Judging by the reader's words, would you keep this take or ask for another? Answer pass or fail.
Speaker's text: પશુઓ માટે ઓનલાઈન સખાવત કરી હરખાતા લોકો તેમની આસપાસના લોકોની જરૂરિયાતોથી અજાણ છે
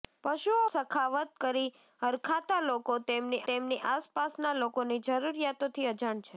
fail